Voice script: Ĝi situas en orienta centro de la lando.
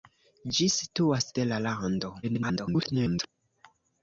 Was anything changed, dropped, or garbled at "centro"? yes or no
yes